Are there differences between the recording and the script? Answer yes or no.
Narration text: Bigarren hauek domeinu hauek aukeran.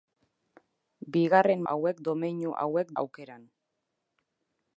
no